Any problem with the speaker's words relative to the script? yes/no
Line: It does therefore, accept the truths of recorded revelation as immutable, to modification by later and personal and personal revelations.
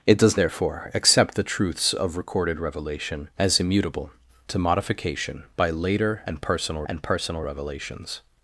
no